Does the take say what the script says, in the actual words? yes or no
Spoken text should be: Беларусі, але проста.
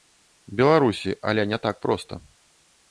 no